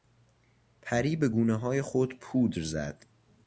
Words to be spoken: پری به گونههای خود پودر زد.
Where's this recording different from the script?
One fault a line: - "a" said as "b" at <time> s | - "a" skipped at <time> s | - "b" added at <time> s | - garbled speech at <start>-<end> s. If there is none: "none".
none